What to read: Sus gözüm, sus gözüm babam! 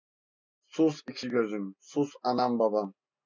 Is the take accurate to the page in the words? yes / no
no